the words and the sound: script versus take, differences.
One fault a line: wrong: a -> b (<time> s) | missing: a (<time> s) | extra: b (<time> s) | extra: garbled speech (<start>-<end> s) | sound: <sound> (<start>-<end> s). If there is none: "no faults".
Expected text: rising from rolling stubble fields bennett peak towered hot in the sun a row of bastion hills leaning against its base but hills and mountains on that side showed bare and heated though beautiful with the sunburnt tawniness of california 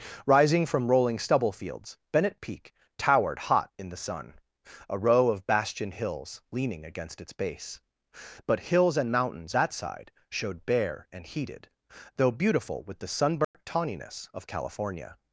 missing: on (9.5 s)
sound: dropout (13.4-13.5 s)